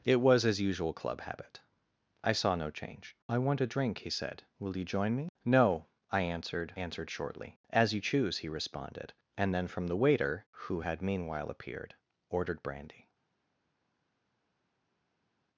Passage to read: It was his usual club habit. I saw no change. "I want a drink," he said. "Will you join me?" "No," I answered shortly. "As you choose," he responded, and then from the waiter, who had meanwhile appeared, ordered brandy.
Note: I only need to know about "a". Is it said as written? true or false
true